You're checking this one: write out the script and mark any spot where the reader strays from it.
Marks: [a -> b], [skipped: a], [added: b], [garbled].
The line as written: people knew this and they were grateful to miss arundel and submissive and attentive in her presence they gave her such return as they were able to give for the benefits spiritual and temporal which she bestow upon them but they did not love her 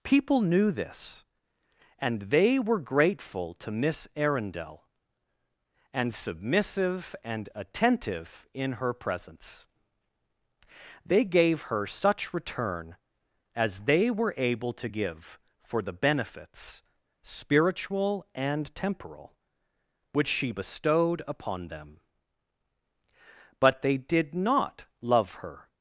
people knew this and they were grateful to miss arundel and submissive and attentive in her presence they gave her such return as they were able to give for the benefits spiritual and temporal which she [bestow -> bestowed] upon them but they did not love her